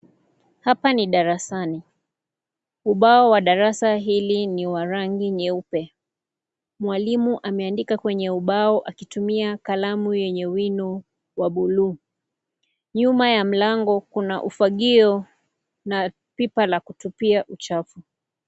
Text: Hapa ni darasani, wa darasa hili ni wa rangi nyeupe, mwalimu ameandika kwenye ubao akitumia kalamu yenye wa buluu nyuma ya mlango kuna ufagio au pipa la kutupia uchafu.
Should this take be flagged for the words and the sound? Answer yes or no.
yes